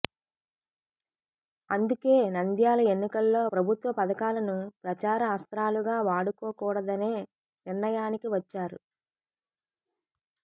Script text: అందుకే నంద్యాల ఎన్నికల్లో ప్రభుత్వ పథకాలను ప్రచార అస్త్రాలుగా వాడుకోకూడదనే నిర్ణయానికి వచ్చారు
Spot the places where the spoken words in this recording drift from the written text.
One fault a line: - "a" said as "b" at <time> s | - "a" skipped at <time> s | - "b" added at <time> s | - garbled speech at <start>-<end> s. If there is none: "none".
none